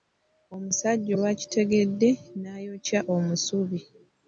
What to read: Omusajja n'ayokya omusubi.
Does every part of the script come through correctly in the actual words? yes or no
no